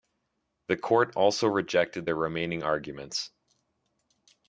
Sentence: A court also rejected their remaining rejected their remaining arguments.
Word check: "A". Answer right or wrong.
wrong